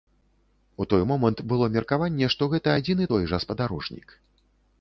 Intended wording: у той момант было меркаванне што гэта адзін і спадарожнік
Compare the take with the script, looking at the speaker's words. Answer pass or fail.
fail